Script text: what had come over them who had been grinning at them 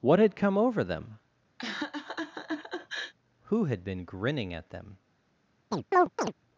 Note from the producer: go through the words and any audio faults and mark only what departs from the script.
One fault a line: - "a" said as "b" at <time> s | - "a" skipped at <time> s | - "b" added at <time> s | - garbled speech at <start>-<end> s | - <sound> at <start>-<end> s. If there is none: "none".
- laugh at 1.6-3.1 s
- chirp at 5.7-6.3 s